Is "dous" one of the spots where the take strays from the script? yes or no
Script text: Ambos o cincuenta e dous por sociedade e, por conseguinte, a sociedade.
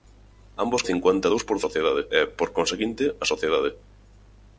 no